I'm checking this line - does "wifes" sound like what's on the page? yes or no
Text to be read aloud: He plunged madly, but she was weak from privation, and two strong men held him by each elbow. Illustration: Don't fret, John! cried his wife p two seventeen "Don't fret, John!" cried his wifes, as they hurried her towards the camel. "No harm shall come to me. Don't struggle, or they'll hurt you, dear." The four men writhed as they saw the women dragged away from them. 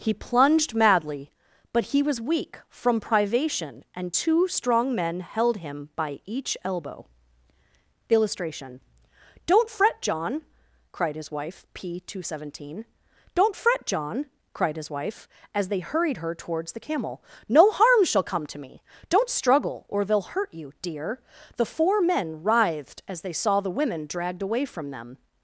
no